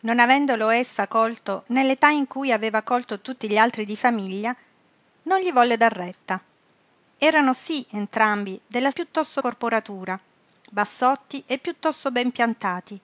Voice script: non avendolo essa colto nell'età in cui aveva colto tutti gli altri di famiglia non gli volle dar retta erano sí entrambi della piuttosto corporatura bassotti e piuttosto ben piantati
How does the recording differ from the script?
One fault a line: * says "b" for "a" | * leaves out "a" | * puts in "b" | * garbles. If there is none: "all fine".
all fine